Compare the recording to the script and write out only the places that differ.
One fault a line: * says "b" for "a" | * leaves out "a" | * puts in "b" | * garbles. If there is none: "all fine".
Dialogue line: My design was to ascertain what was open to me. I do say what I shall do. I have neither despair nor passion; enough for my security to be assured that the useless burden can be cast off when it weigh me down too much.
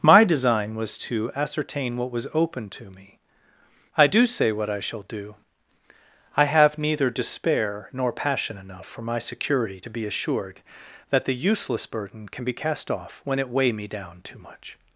all fine